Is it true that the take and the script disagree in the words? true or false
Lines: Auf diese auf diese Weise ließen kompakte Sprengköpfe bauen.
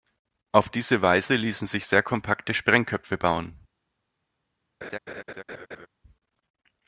true